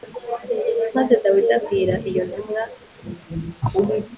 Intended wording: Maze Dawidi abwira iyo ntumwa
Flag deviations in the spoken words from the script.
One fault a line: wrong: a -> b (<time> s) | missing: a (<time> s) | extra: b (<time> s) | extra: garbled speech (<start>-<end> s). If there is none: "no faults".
no faults